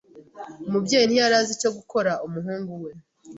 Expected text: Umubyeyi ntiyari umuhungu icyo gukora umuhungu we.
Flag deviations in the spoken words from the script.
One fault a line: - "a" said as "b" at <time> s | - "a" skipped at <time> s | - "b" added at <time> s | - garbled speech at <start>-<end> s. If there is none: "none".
- "umuhungu" said as "azi" at 1.4 s